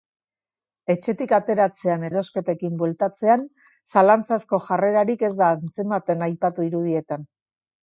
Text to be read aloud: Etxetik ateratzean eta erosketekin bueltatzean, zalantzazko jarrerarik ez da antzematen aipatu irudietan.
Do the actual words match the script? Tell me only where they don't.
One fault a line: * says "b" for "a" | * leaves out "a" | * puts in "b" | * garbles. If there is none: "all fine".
* leaves out "eta"